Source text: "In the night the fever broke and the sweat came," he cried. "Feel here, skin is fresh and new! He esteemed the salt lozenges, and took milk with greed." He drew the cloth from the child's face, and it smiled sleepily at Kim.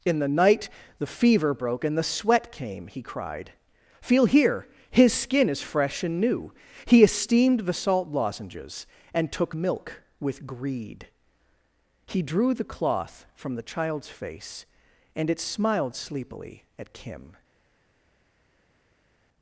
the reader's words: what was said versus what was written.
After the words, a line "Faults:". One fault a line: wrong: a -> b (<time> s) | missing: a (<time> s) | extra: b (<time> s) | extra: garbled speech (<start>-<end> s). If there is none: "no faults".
"In the night the fever broke and the sweat came," he cried. "Feel here, his skin is fresh and new! He esteemed the salt lozenges, and took milk with greed." He drew the cloth from the child's face, and it smiled sleepily at Kim.
Faults:
extra: his (4.9 s)